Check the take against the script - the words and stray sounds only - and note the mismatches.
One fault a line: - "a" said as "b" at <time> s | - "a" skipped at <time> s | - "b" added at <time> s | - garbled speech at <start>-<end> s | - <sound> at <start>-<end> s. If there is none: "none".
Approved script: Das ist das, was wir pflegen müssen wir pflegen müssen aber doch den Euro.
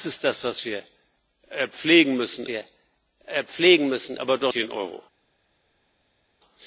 none